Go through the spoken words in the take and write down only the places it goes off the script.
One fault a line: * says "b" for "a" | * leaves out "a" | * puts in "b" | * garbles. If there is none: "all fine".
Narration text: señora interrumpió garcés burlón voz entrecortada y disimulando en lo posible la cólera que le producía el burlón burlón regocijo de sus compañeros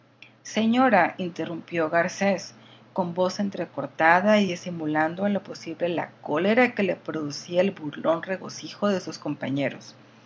* says "con" for "burlón"
* leaves out "burlón"